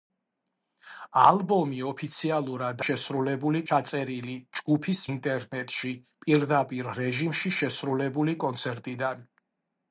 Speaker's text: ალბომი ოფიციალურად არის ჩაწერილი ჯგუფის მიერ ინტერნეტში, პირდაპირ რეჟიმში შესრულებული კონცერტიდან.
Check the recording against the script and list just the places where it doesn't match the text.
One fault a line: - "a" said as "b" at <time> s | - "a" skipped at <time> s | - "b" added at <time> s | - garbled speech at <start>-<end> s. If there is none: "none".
- "არის" said as "შესრულებული" at 2.9 s
- "მიერ" skipped at 5.0 s